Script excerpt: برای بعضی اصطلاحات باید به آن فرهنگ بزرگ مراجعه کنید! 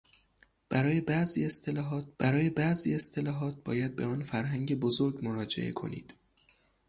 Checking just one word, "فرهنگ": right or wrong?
right